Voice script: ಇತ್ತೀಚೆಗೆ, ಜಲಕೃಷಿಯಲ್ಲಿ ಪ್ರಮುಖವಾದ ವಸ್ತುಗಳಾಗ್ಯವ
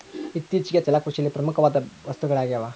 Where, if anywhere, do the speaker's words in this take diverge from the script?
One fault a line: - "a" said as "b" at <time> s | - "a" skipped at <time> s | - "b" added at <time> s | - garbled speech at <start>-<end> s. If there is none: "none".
none